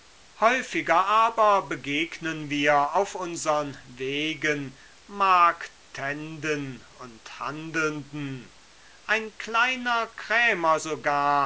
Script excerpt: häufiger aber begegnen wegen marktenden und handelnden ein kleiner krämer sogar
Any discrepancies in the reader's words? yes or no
yes